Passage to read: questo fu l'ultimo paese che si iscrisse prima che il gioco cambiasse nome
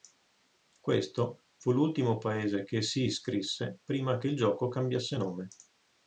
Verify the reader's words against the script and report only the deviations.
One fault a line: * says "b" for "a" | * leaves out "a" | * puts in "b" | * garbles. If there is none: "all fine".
all fine